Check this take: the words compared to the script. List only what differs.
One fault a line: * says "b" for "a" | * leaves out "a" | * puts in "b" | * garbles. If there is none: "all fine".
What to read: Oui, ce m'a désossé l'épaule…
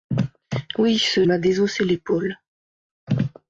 all fine